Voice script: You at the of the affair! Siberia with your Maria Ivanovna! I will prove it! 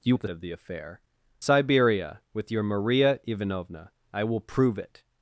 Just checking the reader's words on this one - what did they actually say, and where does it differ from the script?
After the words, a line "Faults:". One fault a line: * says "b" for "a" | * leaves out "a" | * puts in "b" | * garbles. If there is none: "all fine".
You at the of the affair! Siberia with your Maria Ivanovna! I will prove it!
Faults:
all fine